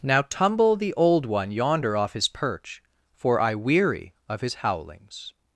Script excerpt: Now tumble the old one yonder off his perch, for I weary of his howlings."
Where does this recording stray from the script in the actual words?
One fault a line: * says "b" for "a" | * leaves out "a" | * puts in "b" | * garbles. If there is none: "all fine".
all fine